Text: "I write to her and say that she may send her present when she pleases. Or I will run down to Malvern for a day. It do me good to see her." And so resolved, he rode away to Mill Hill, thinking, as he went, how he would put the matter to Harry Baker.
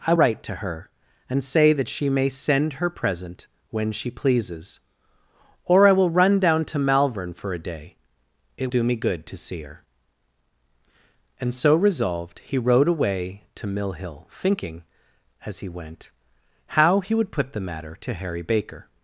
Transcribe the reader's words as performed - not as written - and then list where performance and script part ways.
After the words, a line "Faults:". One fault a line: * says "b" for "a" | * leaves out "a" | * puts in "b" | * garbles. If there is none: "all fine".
"I write to her and say that she may send her present when she pleases. Or I will run down to Malvern for a day. It do me good to see her." And so resolved, he rode away to Mill Hill, thinking, as he went, how he would put the matter to Harry Baker.
Faults:
all fine